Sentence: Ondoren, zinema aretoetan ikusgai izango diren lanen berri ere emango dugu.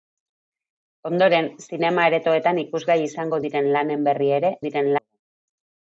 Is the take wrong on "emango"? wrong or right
wrong